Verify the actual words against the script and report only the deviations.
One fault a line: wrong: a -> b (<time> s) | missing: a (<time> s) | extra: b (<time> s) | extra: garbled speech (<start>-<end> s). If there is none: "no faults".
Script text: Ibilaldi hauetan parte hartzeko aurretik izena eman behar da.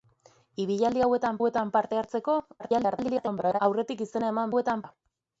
extra: hauetan (1.4 s)
extra: garbled speech (2.6-3.6 s)
wrong: behar -> hauetan (4.5 s)